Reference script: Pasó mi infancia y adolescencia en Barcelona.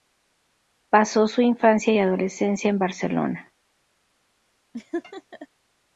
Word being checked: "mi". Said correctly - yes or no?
no